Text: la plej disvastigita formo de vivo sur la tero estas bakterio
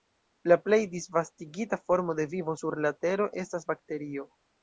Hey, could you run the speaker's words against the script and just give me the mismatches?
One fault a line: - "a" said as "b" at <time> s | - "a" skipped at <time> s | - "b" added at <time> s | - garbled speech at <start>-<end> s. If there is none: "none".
none